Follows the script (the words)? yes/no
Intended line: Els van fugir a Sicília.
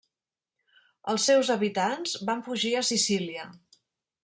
no